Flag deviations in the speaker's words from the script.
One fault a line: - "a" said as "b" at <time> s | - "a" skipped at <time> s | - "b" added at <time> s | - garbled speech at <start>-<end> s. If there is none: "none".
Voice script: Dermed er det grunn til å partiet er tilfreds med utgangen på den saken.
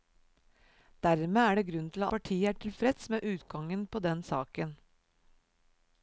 none